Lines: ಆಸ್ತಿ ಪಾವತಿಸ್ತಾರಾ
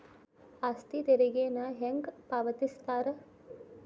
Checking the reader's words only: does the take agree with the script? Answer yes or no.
no